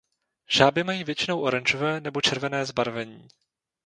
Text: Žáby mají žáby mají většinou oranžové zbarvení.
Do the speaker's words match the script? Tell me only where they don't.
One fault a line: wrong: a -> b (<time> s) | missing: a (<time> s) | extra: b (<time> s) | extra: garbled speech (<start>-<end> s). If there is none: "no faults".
wrong: žáby mají většinou oranžové -> většinou oranžové nebo červené (1.0 s)